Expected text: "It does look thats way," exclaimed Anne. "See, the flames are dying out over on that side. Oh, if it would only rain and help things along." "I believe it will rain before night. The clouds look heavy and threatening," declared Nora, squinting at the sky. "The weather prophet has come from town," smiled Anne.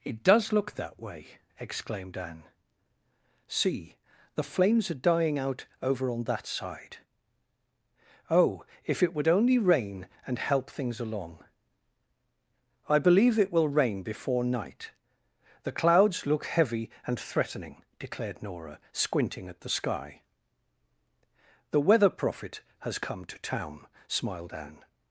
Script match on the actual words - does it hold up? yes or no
no